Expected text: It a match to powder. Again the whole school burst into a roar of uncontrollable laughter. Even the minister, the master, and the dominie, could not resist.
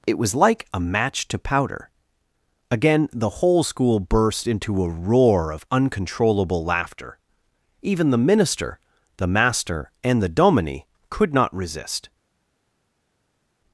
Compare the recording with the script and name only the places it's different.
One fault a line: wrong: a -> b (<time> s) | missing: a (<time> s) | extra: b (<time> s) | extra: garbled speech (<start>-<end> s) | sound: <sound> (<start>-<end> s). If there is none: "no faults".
extra: was like (0.2 s)